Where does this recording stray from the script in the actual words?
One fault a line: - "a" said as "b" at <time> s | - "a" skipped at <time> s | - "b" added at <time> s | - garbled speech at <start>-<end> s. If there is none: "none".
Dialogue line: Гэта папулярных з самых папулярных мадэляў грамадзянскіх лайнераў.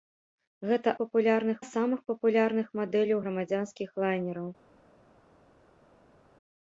none